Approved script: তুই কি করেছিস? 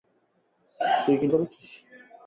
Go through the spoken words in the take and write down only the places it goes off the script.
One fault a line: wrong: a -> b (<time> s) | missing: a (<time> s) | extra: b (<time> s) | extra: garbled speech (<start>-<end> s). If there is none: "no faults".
no faults